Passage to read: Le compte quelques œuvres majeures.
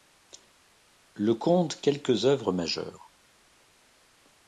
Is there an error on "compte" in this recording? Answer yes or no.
no